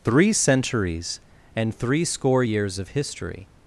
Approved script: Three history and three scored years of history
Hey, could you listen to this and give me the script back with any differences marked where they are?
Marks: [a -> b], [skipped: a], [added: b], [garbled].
Three [history -> centuries] and three [scored -> score] years of history